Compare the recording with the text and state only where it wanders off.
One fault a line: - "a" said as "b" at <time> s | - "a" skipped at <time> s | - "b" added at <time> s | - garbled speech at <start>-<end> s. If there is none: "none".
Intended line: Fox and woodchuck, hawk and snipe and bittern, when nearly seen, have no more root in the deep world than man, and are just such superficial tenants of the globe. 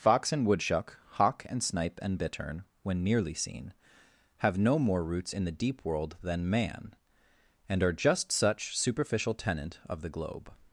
- "root" said as "roots" at 5.0 s
- "tenants" said as "tenant" at 9.3 s